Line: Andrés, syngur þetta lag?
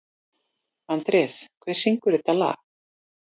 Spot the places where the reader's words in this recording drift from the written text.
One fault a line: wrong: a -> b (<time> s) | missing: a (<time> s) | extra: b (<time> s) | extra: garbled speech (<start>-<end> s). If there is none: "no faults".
extra: hver (1.6 s)